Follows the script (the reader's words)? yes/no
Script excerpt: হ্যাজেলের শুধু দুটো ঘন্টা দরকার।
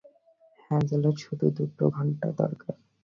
yes